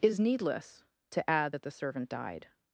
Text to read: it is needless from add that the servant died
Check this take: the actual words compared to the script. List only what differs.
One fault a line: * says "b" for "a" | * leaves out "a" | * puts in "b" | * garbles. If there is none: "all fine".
* says "to" for "from"